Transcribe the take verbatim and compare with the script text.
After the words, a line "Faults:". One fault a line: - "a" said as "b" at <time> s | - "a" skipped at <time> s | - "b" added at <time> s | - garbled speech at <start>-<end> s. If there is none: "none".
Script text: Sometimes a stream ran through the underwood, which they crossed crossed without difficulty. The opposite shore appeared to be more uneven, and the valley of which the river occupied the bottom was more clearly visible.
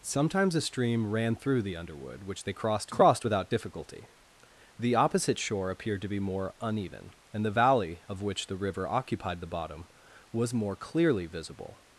Sometimes a stream ran through the underwood, which they crossed crossed without difficulty. The opposite shore appeared to be more uneven, and the valley of which the river occupied the bottom was more clearly visible.
Faults:
none